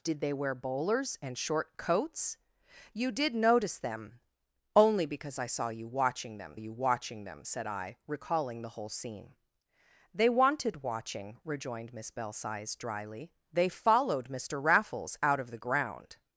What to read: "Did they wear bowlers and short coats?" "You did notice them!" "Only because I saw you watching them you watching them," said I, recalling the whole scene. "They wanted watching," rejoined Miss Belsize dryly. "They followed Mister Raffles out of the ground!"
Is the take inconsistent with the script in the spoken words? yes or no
no